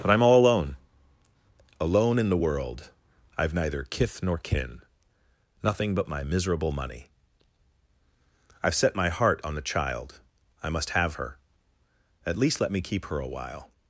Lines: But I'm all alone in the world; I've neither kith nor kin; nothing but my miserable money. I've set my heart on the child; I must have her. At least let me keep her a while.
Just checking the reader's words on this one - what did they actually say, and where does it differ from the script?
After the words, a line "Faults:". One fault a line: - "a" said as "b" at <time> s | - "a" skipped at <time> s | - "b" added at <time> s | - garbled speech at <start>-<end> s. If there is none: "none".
But I'm all alone alone in the world; I've neither kith nor kin; nothing but my miserable money. I've set my heart on the child; I must have her. At least let me keep her a while.
Faults:
- "alone" added at 1.8 s